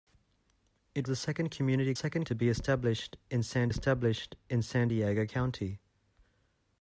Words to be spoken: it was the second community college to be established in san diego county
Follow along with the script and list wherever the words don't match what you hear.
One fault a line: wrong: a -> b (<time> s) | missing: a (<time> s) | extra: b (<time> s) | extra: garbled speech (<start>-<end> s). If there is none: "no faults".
missing: was (1.1 s)
wrong: college -> second (1.9 s)
extra: established in san (3.7 s)